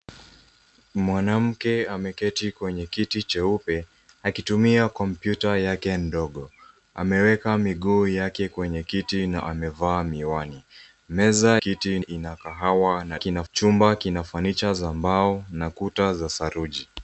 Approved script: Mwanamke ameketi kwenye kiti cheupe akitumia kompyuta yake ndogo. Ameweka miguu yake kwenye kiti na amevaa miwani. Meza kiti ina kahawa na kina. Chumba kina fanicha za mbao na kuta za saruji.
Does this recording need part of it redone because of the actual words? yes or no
no